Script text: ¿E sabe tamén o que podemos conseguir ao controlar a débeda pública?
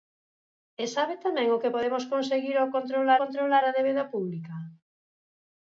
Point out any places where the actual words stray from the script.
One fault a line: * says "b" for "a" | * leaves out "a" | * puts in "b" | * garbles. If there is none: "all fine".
* puts in "controlar"